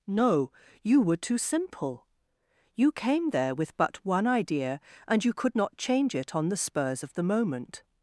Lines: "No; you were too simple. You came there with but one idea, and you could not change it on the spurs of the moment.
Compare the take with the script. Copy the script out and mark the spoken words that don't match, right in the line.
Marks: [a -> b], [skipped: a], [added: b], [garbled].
"No; you were too simple. You came there with but one idea, and you could not change it on the spurs of the moment.